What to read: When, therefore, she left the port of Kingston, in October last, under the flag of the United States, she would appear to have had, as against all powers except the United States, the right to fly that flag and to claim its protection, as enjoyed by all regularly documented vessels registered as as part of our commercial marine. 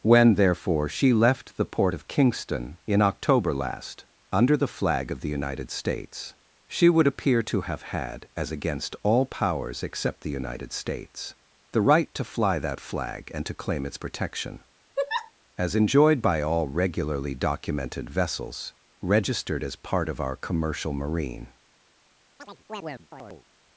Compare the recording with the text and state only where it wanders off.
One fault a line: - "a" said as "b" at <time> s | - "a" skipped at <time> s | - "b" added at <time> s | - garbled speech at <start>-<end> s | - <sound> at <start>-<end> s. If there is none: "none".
- laugh at 15.0-15.3 s
- "as" skipped at 19.8 s
- chirp at 22.4-23.5 s